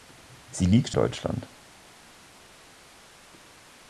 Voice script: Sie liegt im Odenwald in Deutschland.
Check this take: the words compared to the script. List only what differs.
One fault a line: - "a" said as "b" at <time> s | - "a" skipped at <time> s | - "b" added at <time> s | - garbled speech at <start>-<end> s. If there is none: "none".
- "im Odenwald in" skipped at 0.9 s